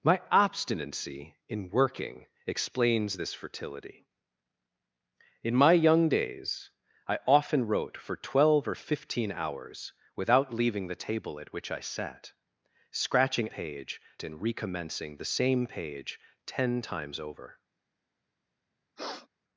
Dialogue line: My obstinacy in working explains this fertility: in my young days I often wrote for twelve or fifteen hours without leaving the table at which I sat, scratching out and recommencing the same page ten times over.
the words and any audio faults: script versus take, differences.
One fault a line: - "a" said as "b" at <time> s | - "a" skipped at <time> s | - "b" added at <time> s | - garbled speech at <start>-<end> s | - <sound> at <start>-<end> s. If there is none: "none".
- "out" said as "page" at 13.5 s
- sniff at 19.0-19.3 s